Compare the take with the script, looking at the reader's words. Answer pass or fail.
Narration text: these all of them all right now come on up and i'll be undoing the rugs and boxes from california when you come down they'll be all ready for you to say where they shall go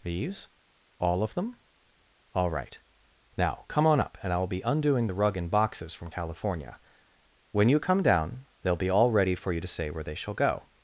fail